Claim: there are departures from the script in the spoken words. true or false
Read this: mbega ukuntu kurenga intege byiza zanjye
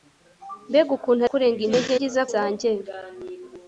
false